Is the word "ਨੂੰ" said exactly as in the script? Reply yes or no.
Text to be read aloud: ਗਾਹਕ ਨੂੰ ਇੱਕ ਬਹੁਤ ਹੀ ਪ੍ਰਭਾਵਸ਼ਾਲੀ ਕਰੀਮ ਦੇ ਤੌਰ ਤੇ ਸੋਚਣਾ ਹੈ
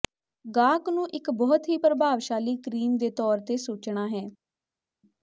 yes